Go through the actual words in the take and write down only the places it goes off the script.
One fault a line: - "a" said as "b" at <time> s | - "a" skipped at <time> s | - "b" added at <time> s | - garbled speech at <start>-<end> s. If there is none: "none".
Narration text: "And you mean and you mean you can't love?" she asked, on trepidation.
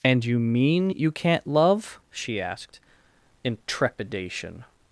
- "and" skipped at 0.9 s
- "mean you" skipped at 1.1 s
- "on" said as "in" at 3.4 s